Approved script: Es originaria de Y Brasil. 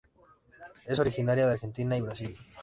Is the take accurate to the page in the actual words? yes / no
no